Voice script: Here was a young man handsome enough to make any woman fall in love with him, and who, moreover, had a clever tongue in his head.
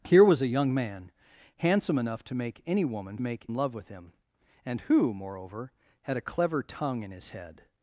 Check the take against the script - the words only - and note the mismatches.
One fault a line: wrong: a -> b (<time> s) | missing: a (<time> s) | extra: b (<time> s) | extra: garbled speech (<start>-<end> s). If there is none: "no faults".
wrong: fall -> make (3.2 s)